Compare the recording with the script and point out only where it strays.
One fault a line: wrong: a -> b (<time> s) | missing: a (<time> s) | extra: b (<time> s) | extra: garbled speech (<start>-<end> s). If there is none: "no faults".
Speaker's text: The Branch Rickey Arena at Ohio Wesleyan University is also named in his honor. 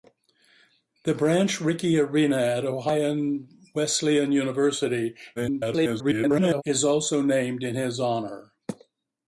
extra: garbled speech (5.4-6.6 s)